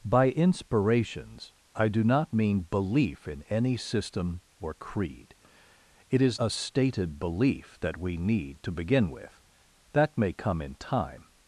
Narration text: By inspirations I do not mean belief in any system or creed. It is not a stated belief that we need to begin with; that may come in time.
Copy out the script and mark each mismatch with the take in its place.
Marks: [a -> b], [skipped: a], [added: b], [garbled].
By inspirations I do not mean belief in any system or creed. It is [skipped: not] a stated belief that we need to begin with; that may come in time.